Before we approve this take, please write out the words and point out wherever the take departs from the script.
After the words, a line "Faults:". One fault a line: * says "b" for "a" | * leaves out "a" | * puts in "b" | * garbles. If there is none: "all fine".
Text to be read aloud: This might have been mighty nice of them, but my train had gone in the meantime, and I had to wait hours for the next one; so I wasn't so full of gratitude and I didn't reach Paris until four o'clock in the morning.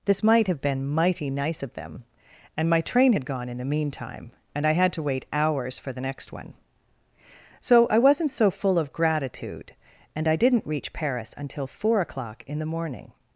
This might have been mighty nice of them, and my train had gone in the meantime, and I had to wait hours for the next one; so I wasn't so full of gratitude and I didn't reach Paris until four o'clock in the morning.
Faults:
* says "and" for "but"